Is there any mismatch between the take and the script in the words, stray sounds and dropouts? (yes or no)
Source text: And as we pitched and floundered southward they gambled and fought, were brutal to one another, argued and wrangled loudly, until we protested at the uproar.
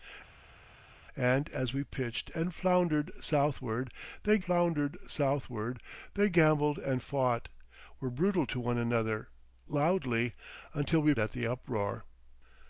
yes